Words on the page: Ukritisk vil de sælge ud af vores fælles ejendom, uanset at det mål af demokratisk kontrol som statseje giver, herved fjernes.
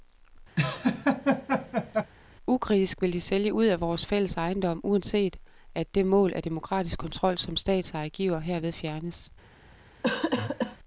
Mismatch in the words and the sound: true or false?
true